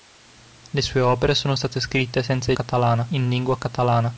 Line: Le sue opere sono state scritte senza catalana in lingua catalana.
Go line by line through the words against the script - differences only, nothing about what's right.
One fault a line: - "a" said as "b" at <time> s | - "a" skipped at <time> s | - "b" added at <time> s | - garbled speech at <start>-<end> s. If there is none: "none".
none